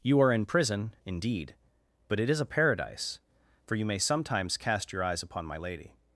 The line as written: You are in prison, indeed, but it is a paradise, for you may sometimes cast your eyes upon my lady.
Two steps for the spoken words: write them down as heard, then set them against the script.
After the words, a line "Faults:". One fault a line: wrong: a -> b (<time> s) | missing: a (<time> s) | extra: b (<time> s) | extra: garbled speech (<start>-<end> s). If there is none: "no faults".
You are in prison, indeed, but it is a paradise, for you may sometimes cast your eyes upon my lady.
Faults:
no faults